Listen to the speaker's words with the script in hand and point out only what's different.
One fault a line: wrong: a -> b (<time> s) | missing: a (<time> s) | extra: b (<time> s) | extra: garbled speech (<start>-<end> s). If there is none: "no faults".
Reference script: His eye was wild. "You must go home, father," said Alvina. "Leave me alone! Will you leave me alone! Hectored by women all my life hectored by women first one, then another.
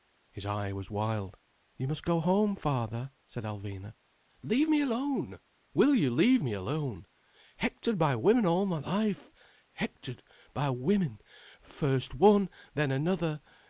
no faults